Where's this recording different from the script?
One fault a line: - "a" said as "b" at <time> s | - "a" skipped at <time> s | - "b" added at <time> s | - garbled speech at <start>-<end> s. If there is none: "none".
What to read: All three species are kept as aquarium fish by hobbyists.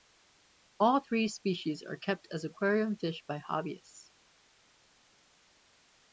none